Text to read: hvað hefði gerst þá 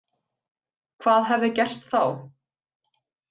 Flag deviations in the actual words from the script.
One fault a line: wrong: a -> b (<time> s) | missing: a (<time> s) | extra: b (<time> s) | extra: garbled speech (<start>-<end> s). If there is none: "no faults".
no faults